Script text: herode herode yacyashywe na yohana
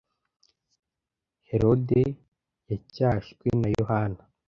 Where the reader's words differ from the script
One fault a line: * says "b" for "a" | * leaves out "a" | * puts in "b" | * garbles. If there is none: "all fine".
* leaves out "herode"